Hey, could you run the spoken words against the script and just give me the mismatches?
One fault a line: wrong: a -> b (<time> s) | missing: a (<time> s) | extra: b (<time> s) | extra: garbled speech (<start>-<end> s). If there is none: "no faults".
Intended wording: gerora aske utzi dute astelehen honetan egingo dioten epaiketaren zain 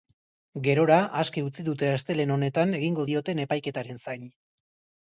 no faults